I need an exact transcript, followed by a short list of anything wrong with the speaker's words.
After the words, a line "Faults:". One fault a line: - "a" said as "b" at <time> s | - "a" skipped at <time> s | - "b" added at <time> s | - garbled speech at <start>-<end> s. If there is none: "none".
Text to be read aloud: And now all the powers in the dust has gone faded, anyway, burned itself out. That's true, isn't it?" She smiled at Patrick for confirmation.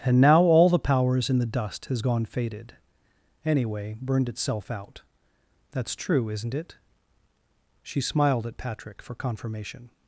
And now all the powers in the dust has gone faded, anyway, burned itself out. That's true, isn't it?" She smiled at Patrick for confirmation.
Faults:
none